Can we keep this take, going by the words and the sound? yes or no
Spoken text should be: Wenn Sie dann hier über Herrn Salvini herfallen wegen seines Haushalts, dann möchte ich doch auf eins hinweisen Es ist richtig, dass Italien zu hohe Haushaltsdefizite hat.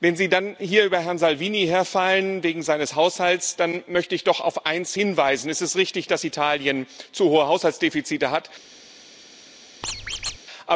no